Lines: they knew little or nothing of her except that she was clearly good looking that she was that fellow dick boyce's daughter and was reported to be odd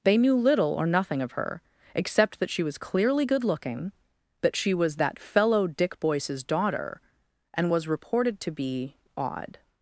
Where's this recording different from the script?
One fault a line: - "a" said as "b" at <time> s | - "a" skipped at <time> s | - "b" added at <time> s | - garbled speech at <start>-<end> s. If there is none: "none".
none